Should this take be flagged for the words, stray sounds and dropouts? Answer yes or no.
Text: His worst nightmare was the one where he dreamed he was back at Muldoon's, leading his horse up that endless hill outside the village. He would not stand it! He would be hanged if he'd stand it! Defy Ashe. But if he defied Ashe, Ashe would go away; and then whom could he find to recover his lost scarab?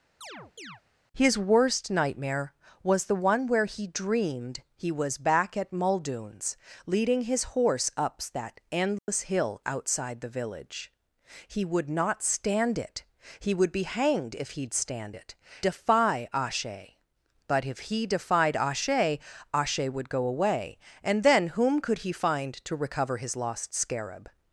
yes